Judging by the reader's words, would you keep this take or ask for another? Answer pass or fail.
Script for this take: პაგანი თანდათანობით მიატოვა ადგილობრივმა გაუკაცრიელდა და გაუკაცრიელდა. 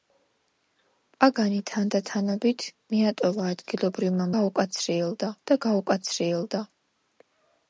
pass